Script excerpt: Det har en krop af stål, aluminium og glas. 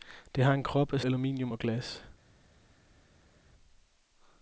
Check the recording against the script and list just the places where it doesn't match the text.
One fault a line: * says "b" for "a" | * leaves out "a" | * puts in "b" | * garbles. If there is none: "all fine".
* leaves out "stål"